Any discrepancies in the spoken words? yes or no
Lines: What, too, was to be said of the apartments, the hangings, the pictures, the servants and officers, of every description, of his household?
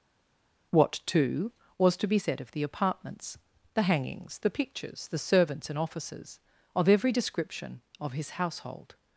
no